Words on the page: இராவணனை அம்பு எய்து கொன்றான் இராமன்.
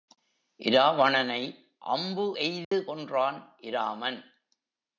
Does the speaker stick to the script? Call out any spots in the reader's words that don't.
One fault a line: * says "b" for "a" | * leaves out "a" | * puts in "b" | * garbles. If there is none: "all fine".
all fine